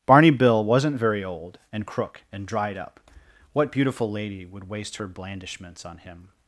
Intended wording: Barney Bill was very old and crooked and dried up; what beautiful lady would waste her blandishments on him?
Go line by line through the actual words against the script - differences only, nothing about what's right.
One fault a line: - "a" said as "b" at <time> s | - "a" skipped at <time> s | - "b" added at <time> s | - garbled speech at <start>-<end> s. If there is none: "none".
- "was" said as "wasn't" at 0.6 s
- "crooked" said as "crook" at 1.9 s